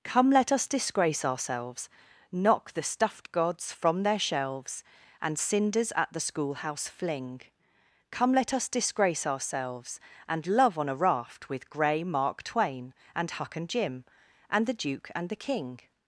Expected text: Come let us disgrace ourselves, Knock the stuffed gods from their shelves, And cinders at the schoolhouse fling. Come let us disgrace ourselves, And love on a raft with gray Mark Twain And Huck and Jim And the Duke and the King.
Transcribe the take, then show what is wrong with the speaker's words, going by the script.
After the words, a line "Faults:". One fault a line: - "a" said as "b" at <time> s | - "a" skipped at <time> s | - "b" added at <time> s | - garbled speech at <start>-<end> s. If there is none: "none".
Come let us disgrace ourselves, Knock the stuffed gods from their shelves, And cinders at the schoolhouse fling. Come let us disgrace ourselves, And love on a raft with gray Mark Twain And Huck and Jim And the Duke and the King.
Faults:
none